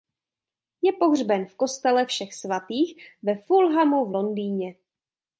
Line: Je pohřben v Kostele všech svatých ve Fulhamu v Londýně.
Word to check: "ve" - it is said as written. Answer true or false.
true